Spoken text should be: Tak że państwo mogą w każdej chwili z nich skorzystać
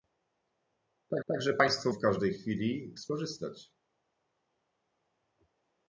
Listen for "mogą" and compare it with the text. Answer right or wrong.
wrong